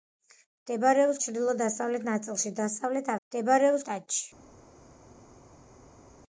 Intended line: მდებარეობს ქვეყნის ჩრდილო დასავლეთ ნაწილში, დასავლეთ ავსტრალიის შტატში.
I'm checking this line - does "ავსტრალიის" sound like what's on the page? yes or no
no